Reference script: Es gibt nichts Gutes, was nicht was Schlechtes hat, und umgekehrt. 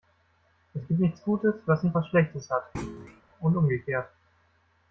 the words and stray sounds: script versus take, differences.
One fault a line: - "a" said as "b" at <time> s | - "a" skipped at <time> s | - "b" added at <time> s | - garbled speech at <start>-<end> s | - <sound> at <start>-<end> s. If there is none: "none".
- thud at 2.7-3.2 s